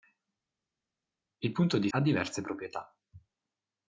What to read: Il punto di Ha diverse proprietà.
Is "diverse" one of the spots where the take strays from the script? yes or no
no